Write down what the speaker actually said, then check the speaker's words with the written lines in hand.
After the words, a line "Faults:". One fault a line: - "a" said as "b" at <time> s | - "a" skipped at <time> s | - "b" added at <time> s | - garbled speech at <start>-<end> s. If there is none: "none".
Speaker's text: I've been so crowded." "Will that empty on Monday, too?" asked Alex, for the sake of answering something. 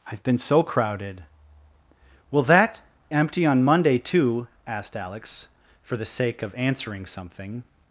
I've been so crowded." "Will that empty on Monday, too?" asked Alex, for the sake of answering something.
Faults:
none